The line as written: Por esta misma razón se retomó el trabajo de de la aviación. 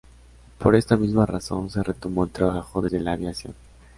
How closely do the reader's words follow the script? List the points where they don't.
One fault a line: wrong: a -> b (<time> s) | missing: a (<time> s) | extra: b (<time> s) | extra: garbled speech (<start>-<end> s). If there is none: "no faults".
no faults